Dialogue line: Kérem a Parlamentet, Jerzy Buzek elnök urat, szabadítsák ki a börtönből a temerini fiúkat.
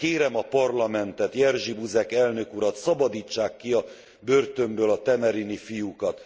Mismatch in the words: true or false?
false